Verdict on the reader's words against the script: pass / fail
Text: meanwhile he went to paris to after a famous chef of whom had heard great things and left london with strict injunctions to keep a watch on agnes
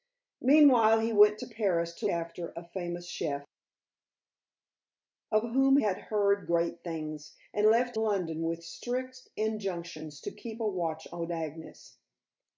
pass